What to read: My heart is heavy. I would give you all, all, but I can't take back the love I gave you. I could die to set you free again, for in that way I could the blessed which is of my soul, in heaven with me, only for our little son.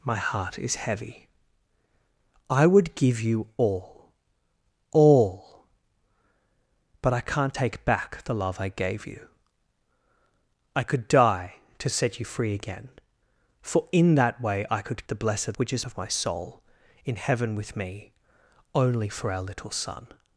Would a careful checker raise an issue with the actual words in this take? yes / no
no